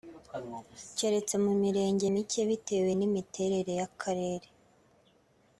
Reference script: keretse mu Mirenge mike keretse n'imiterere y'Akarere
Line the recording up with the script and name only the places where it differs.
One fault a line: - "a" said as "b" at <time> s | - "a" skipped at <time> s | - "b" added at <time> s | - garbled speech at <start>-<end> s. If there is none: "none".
- "keretse" said as "bitewe" at 2.5 s